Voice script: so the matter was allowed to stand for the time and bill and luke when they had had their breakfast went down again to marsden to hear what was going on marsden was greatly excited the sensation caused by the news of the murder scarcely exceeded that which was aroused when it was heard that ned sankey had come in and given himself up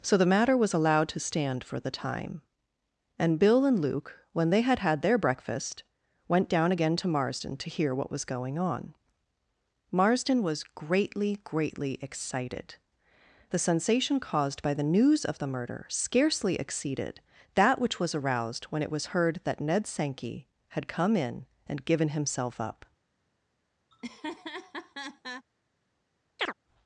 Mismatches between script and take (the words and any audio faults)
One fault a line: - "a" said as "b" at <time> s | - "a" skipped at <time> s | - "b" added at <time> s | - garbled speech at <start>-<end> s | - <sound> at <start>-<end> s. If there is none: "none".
- "greatly" added at 11.4 s
- laugh at 23.9-25.5 s
- chirp at 26.4-26.5 s